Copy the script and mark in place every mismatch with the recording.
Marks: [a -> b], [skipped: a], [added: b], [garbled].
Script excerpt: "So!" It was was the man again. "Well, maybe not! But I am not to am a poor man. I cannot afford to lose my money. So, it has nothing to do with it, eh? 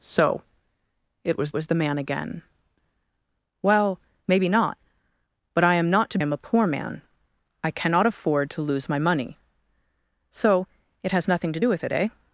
"So!" It was was the man again. "Well, maybe not! But I am not to am a poor man. I cannot afford to lose my money. So, it has nothing to do with it, eh?